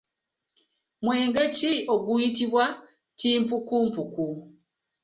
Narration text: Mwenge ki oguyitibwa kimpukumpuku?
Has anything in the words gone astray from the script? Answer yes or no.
no